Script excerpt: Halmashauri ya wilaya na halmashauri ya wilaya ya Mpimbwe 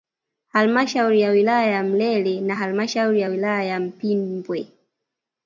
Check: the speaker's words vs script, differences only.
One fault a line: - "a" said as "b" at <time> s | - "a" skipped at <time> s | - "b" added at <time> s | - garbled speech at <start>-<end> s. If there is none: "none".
- "ya Mlele" added at 1.7 s